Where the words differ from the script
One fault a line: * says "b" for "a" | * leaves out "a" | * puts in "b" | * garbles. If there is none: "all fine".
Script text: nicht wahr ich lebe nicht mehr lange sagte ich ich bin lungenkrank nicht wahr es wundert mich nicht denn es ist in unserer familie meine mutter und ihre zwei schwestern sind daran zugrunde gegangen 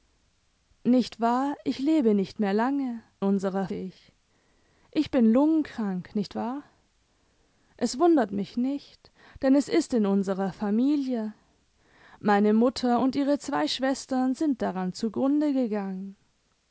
* says "unserer" for "sagte"